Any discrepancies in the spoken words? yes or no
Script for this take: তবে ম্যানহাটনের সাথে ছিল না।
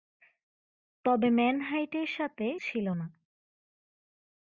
no